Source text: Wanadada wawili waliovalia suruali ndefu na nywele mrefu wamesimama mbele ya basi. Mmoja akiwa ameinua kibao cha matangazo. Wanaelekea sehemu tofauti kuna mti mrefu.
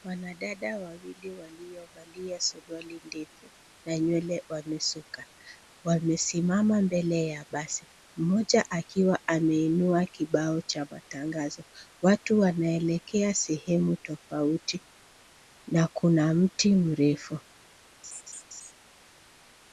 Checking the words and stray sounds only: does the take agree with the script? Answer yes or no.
no